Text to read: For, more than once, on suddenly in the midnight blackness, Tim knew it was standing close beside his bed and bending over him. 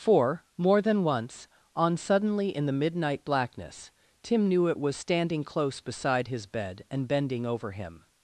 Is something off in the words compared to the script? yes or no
no